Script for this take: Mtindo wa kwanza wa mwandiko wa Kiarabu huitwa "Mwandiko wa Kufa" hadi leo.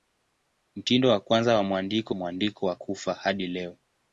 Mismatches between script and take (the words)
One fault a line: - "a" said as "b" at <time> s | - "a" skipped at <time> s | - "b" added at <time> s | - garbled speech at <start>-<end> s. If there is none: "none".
- "wa Kiarabu huitwa" skipped at 2.1 s